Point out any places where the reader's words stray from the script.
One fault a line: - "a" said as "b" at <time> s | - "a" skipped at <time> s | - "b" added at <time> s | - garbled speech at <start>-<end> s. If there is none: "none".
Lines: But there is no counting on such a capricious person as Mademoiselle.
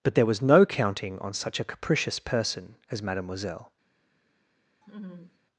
- "is" said as "was" at 0.2 s